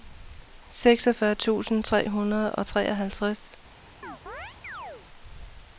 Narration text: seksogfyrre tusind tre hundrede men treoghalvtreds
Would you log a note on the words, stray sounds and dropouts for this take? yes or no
yes